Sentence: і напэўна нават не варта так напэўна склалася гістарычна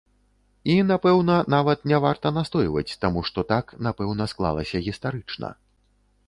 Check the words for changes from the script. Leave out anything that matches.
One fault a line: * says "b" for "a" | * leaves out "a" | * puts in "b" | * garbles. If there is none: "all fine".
* puts in "настойваць таму што"